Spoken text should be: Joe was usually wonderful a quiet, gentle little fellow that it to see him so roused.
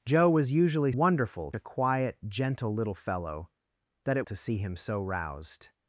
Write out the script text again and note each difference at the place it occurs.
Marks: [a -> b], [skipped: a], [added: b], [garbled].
Joe was usually wonderful a quiet, gentle little fellow that it to see him so roused.